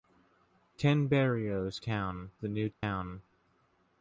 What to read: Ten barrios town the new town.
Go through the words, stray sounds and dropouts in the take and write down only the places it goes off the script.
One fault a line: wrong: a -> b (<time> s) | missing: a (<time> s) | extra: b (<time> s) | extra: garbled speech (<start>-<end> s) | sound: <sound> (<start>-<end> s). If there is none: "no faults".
sound: dropout (2.7-2.8 s)